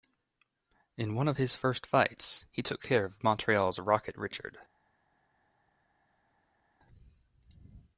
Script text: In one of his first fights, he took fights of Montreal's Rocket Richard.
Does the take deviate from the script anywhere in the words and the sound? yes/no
yes